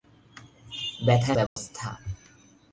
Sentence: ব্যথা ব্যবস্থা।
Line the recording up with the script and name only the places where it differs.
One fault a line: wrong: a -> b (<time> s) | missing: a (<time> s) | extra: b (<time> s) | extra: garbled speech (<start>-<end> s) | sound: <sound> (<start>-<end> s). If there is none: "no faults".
sound: dropout (1.5-1.6 s)